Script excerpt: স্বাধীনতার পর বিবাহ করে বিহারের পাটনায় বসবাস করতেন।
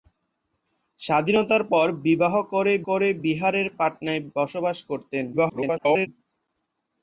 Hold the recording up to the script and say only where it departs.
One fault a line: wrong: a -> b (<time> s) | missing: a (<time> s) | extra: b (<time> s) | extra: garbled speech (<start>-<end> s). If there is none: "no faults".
extra: করে (2.9 s)
extra: garbled speech (5.3-6.1 s)